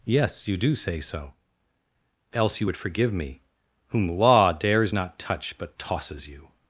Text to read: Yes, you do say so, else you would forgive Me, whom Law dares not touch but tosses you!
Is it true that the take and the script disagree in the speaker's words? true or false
false